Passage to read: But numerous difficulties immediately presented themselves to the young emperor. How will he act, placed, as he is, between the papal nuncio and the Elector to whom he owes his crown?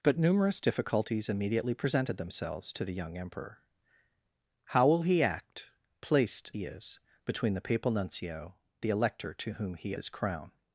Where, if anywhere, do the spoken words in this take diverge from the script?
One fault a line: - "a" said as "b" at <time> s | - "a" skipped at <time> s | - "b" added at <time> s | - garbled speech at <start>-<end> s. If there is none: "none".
- "as" skipped at 6.5 s
- "and" skipped at 8.6 s
- "owes" skipped at 10.0 s